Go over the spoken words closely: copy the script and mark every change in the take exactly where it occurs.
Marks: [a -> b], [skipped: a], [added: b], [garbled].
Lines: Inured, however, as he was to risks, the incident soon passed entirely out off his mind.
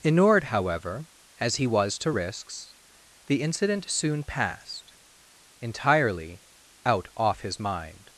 Inured, however, as he was to risks, the incident soon passed entirely out off his mind.